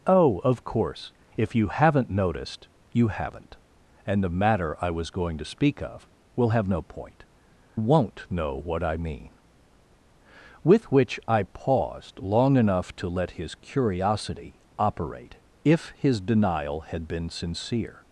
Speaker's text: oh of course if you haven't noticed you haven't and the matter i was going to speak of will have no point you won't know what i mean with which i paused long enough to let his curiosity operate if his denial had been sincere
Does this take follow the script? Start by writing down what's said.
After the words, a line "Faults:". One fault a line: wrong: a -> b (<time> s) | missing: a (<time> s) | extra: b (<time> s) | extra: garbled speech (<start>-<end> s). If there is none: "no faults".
oh of course if you haven't noticed you haven't and the matter i was going to speak of will have no point won't know what i mean with which i paused long enough to let his curiosity operate if his denial had been sincere
Faults:
missing: you (7.2 s)